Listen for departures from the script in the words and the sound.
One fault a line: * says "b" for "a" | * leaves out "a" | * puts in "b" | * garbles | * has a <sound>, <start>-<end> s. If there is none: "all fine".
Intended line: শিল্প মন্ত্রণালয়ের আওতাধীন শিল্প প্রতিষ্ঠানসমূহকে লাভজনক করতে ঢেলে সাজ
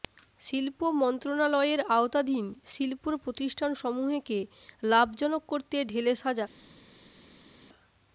all fine